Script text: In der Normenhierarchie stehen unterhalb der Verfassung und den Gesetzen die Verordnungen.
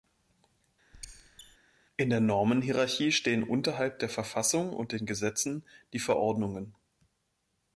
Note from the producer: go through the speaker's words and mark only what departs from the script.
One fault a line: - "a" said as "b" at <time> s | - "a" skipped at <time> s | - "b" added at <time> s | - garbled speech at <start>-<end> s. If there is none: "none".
none